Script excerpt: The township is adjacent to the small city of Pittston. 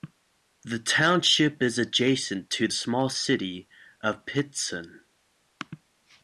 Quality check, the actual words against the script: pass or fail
fail